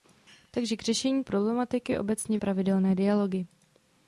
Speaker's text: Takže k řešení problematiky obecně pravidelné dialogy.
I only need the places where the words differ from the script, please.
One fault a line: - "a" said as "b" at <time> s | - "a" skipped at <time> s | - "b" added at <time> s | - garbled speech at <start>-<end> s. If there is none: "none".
none